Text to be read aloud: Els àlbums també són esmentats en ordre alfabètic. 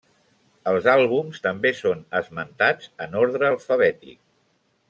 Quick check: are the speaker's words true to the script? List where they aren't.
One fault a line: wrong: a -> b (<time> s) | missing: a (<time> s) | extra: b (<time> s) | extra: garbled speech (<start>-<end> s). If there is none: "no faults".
no faults